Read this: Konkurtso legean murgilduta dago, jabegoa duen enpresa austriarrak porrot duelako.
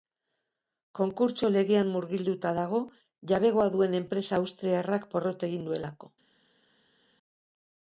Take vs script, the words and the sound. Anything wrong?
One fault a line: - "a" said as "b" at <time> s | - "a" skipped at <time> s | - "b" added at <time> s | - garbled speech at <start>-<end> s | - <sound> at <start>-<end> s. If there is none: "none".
- "egin" added at 5.5 s